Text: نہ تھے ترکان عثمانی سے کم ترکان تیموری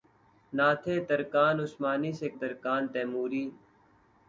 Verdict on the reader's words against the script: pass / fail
fail